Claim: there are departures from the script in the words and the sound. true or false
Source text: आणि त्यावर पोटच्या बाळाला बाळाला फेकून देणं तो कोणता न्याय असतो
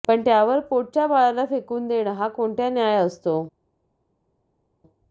true